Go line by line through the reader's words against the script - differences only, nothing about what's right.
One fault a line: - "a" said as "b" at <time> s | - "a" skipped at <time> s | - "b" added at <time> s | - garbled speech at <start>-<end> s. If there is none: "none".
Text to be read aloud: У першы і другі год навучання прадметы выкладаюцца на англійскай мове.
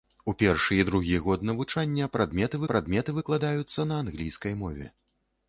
- "прадметы" added at 2.7 s